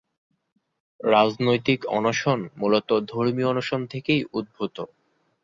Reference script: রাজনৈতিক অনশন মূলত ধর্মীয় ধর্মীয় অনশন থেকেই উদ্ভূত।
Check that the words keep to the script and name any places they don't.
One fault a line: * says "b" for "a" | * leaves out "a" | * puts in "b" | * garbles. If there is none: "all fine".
* leaves out "ধর্মীয়"